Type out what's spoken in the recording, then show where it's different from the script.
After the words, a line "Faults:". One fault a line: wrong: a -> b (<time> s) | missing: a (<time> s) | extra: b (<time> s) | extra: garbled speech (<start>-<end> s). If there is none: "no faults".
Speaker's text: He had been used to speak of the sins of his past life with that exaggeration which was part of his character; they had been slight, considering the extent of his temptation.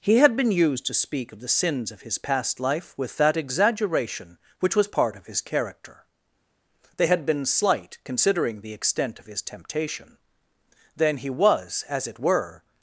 He had been used to speak of the sins of his past life with that exaggeration which was part of his character; they had been slight, considering the extent of his temptation. Then he was, as it were
Faults:
extra: Then he was as it were (10.9 s)